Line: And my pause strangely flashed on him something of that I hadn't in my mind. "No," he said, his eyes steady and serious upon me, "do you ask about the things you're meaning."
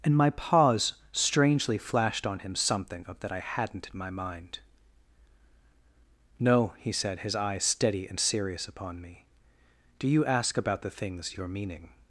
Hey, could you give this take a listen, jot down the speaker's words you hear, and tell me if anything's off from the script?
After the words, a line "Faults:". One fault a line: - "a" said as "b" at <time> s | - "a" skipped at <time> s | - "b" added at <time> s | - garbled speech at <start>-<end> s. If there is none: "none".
And my pause strangely flashed on him something of that I hadn't in my mind. "No," he said, his eyes steady and serious upon me, "do you ask about the things you're meaning."
Faults:
none